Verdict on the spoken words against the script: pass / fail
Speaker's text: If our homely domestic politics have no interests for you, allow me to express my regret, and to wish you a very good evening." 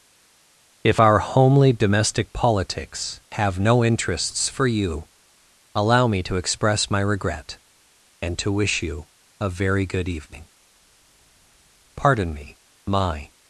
fail